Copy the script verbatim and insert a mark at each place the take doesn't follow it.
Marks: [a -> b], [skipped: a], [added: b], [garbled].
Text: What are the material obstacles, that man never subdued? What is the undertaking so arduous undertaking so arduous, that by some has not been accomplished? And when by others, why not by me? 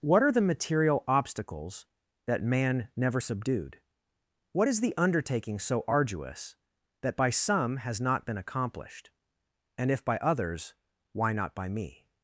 What are the material obstacles, that man never subdued? What is the undertaking so arduous [skipped: undertaking so arduous,] that by some has not been accomplished? And [when -> if] by others, why not by me?